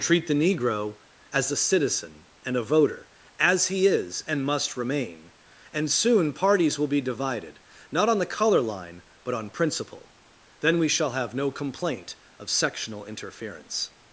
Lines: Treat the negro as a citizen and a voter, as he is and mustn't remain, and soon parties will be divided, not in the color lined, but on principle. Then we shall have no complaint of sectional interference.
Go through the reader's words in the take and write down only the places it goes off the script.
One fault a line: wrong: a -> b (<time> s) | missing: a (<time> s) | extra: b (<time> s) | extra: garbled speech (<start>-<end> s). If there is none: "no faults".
wrong: mustn't -> must (4.4 s)
wrong: in -> on (8.1 s)
wrong: lined -> line (8.6 s)